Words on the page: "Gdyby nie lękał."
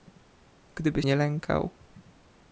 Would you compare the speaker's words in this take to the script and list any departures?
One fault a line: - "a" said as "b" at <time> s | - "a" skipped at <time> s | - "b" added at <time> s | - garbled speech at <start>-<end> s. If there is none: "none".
none